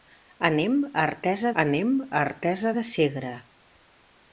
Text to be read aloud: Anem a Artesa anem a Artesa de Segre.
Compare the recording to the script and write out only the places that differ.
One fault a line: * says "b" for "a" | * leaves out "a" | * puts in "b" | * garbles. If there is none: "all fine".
all fine